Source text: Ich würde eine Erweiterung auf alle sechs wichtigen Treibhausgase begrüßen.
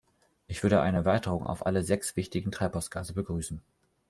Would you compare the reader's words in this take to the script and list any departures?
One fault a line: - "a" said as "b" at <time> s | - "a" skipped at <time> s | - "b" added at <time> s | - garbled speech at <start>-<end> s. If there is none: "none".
none